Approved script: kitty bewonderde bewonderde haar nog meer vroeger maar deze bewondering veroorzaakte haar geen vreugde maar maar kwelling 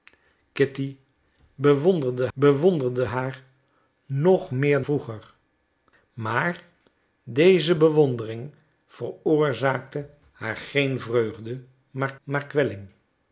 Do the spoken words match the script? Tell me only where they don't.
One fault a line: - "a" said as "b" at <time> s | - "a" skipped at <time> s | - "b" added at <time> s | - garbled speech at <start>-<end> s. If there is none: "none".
none